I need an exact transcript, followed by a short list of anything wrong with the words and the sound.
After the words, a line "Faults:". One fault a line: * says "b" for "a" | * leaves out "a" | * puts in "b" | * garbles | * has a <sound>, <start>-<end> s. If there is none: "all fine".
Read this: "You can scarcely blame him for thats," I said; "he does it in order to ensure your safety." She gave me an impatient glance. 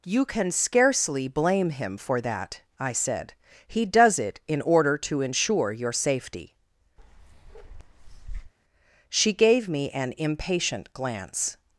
"You can scarcely blame him for that," I said; "he does it in order to ensure your safety." She gave me an impatient glance.
Faults:
* says "that" for "thats"
* has a bark, 7.0-8.5 s